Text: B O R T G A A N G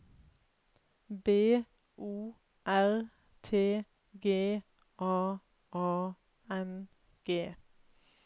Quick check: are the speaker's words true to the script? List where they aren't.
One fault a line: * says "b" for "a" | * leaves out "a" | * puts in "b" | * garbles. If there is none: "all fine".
all fine